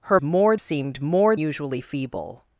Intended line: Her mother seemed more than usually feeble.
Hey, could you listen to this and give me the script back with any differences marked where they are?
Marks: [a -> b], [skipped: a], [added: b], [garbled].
Her [mother -> more] seemed more [skipped: than] usually feeble.